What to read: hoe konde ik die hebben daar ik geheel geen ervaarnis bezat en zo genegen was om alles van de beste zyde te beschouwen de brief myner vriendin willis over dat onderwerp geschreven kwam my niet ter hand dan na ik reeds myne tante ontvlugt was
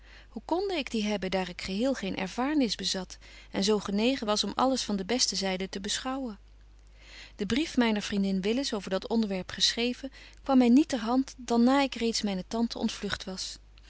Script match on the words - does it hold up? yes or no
yes